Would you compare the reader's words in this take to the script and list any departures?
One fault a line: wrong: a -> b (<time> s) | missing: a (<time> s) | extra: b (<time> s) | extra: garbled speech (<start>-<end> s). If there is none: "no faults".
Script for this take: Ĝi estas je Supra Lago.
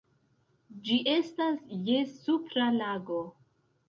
no faults